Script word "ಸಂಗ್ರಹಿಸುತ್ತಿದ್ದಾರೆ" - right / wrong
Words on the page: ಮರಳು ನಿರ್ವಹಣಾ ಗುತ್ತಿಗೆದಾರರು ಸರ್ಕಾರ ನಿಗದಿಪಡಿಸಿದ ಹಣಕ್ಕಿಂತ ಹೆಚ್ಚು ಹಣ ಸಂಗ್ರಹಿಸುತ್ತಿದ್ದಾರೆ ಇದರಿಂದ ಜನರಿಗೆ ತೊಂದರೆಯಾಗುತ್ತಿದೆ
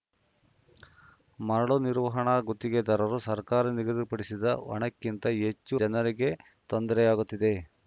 wrong